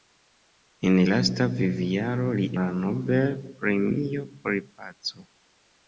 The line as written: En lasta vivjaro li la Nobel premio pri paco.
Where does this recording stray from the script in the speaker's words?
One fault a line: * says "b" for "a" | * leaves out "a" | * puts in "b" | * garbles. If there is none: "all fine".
all fine